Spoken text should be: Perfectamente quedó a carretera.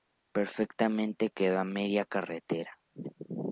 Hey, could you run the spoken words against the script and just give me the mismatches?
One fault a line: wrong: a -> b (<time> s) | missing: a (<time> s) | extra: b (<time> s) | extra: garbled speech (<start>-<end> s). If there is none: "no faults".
extra: media (1.6 s)